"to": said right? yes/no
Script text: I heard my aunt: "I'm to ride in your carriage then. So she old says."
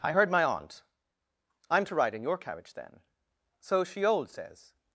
yes